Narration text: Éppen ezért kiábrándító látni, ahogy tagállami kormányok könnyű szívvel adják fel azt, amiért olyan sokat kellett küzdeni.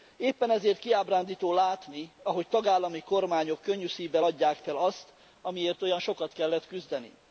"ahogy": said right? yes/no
yes